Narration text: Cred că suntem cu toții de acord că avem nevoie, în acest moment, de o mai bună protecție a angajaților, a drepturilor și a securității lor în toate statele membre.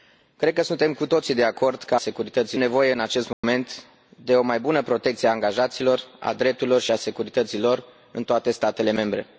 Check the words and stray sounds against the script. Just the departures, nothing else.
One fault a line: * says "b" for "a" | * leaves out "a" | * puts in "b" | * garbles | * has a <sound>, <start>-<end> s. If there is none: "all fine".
* says "securității" for "avem"
* has a dropout, 3.3-3.4 s